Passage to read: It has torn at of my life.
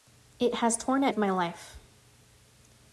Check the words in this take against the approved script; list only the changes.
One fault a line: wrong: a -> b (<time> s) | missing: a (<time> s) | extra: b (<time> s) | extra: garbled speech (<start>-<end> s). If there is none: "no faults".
no faults